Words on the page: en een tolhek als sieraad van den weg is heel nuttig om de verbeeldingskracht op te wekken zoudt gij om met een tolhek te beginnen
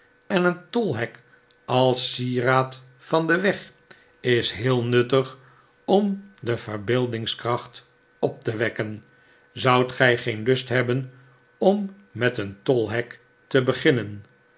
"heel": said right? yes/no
yes